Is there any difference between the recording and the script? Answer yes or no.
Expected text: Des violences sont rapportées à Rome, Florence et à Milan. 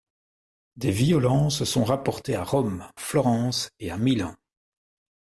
no